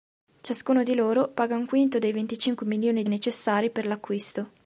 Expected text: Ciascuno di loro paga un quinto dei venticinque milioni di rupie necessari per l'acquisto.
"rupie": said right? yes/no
no